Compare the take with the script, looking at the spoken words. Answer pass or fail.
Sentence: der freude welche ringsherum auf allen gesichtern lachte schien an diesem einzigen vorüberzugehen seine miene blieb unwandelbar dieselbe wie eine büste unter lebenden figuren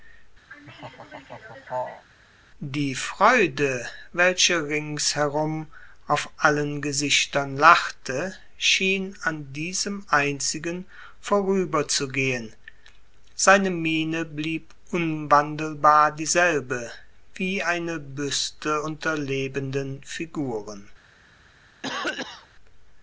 fail